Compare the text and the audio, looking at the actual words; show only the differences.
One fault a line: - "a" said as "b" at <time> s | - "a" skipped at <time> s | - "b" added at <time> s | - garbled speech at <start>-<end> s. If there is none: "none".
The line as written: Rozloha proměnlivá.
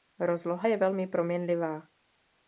- "je velmi" added at 0.6 s